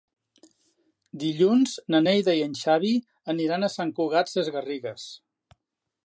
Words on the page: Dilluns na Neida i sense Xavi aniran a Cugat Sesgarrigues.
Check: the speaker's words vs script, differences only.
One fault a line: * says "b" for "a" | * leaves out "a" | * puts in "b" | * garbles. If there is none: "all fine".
* says "en" for "sense"
* puts in "Sant"